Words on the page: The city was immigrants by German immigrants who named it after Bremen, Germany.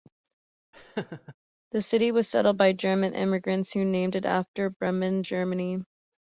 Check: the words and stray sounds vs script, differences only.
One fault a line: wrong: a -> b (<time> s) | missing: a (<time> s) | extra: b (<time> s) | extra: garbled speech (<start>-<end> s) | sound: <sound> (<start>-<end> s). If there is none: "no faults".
sound: laugh (0.7-1.4 s)
wrong: immigrants -> settled (2.3 s)